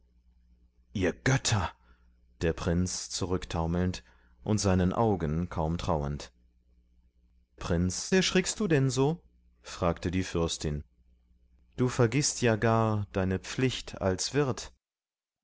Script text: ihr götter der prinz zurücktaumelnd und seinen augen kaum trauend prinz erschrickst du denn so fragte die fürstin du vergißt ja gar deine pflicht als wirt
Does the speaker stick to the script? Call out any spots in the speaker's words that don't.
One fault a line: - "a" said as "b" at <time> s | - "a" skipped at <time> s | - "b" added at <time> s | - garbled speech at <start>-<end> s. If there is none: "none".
none